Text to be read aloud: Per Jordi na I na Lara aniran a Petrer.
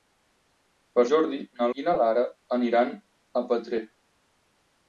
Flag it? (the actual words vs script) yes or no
no